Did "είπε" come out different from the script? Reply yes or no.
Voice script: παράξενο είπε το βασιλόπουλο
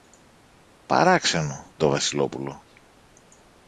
yes